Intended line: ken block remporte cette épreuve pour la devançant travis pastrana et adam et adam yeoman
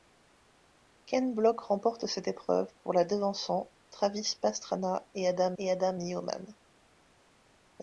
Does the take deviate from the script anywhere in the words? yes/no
no